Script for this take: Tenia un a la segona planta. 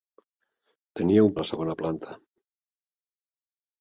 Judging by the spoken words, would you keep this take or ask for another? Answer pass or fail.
pass